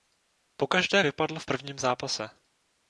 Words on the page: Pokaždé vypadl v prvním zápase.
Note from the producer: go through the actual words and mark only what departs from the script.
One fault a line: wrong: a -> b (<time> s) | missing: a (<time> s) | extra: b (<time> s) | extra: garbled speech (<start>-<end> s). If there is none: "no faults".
no faults